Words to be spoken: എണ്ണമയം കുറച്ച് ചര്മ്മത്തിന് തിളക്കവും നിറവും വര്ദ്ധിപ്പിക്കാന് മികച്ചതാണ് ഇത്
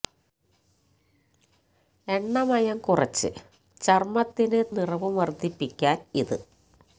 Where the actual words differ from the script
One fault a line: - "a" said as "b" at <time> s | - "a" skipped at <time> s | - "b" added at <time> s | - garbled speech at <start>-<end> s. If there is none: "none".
- "തിളക്കവും" skipped at 4.6 s
- "മികച്ചതാണ്" skipped at 6.0 s